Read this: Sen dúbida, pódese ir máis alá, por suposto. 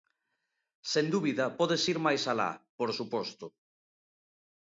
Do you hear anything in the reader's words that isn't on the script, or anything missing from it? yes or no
no